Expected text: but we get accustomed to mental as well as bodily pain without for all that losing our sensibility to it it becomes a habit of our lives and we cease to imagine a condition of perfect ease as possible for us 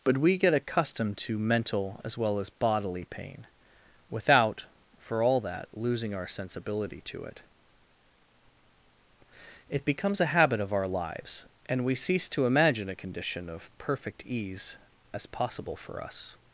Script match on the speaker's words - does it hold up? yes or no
yes